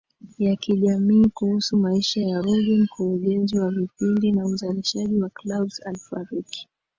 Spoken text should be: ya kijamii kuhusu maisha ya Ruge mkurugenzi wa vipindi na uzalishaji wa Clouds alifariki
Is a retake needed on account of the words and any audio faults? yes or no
no